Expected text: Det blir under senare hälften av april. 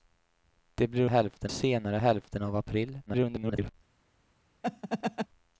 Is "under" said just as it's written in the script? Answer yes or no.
no